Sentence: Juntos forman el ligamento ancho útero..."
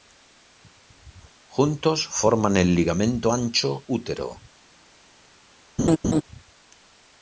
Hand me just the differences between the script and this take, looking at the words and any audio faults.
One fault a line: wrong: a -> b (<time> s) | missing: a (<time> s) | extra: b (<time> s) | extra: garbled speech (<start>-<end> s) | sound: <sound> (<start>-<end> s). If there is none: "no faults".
sound: laugh (5.8-6.2 s)